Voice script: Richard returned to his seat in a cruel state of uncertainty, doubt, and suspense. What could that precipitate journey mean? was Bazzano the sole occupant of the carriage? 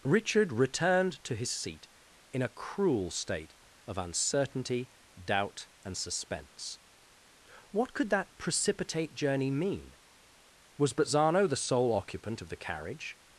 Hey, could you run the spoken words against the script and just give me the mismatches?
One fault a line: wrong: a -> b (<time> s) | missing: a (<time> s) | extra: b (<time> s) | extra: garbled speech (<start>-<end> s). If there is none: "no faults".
no faults